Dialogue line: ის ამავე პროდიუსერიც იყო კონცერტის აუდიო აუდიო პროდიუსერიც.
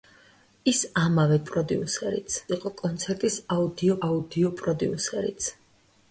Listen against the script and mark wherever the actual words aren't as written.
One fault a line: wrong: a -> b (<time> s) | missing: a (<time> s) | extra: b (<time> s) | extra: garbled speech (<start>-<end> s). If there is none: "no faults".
no faults